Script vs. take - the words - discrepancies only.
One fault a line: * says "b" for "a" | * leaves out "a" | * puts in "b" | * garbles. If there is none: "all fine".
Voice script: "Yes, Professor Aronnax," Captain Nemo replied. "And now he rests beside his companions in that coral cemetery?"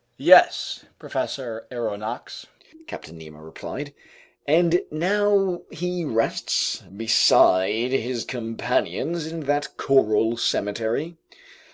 all fine